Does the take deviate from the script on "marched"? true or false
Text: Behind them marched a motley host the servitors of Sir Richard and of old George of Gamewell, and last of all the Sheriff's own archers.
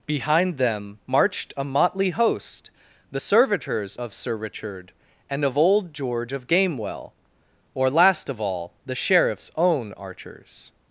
false